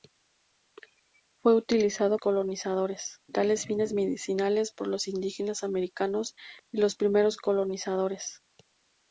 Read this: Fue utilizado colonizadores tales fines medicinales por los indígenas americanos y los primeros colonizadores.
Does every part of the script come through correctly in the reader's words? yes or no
yes